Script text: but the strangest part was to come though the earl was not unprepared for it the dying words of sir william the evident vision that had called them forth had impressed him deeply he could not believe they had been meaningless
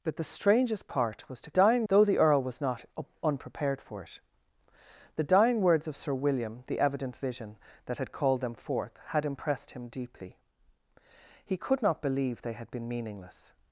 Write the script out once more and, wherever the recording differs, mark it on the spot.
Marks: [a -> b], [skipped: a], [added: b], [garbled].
but the strangest part was to [come -> dying] though the earl was not unprepared for it the dying words of sir william the evident vision that had called them forth had impressed him deeply he could not believe they had been meaningless